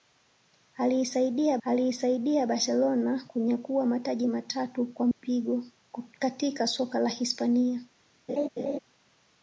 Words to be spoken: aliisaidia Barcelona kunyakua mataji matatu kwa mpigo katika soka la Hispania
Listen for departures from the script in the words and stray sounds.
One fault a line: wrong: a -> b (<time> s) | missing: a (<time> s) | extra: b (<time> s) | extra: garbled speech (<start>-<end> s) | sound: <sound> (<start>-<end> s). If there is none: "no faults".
extra: aliisaidia (1.6 s)
sound: dropout (5.1-5.2 s)
sound: laugh (8.3-8.8 s)